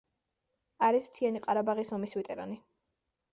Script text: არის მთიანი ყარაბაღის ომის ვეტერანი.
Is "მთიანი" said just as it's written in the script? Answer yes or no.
yes